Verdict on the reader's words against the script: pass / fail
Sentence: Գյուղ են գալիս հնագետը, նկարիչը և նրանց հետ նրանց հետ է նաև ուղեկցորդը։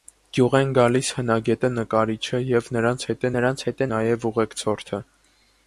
pass